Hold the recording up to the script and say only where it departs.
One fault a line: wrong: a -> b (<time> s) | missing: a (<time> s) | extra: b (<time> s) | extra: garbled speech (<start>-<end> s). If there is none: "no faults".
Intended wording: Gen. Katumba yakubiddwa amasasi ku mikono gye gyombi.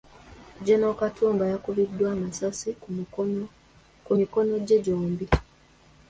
no faults